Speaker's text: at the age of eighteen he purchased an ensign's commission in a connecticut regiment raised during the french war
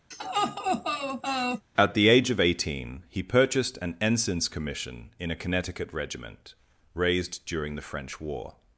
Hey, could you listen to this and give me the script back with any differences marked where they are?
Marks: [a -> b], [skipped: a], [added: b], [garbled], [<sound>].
[laugh] at the age of eighteen he purchased an ensign's commission in a connecticut regiment raised during the french war